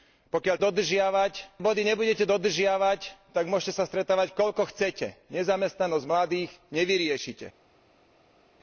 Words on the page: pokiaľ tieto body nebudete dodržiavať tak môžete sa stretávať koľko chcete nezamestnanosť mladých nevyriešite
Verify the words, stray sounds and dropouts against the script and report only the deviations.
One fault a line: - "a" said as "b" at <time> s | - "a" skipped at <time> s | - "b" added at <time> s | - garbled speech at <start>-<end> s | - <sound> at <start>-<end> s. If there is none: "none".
- "tieto" said as "dodržiavať" at 0.6 s